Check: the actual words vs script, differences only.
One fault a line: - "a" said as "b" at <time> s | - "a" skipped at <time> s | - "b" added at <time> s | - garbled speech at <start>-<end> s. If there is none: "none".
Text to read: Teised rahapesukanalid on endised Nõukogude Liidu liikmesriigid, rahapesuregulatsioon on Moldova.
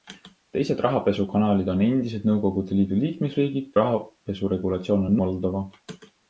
none